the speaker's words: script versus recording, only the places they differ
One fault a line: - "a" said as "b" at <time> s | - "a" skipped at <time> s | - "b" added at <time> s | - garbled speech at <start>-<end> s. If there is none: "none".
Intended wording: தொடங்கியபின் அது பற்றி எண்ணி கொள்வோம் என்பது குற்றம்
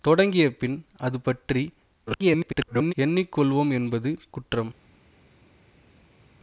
- garbled speech at 2.1-2.9 s